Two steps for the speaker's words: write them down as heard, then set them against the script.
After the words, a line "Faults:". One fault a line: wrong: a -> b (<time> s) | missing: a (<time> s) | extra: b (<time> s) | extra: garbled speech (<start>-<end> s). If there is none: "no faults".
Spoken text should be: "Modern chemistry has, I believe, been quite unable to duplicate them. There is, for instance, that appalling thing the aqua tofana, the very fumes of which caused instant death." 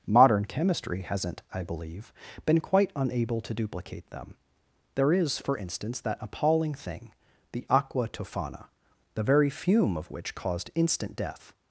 "Modern chemistry hasn't, I believe, been quite unable to duplicate them. There is, for instance, that appalling thing the aqua tofana, the very fume of which caused instant death."
Faults:
wrong: has -> hasn't (1.0 s)
wrong: fumes -> fume (9.5 s)